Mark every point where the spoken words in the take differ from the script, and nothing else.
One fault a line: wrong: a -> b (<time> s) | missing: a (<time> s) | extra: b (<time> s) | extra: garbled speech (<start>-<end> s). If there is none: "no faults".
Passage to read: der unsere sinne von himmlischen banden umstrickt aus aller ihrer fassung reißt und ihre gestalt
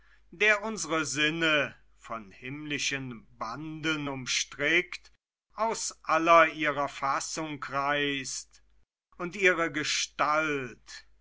no faults